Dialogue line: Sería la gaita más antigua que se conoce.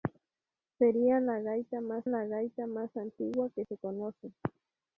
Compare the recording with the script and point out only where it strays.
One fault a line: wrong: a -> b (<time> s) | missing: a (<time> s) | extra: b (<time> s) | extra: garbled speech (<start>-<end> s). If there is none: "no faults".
extra: la gaita más (2.0 s)